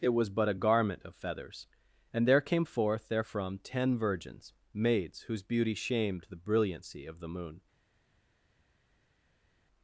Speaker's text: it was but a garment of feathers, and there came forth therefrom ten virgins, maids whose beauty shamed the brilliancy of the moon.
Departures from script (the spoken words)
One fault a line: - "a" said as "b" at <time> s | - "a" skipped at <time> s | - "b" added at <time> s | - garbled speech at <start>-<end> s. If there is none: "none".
none